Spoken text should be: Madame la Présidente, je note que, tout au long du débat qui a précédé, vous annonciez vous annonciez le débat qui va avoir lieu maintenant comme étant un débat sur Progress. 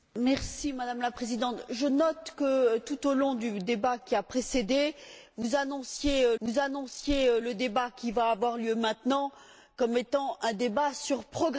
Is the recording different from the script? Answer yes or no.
no